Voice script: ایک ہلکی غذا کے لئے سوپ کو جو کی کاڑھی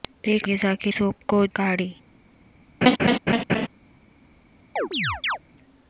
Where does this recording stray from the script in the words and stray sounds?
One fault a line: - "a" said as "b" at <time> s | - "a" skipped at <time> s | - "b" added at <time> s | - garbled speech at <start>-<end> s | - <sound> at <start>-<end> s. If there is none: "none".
- "ہلکی" skipped at 0.5 s
- "لئے" skipped at 0.9 s
- "جو کی" skipped at 1.4 s
- laugh at 2.8-3.7 s
- chirp at 4.8-5.4 s